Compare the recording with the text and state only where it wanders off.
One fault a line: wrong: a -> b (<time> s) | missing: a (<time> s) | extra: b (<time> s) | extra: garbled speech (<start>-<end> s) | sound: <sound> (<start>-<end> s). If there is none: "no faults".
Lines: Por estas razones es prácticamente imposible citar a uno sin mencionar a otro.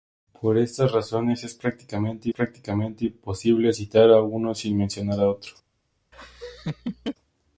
extra: prácticamente (2.3 s)
sound: laugh (6.1-7.2 s)